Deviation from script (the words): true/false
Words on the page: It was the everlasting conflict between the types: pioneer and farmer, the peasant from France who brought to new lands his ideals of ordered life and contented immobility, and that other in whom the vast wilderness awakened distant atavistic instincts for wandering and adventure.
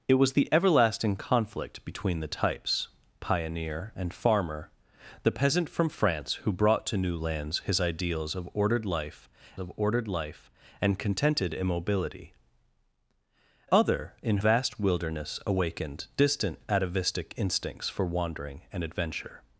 true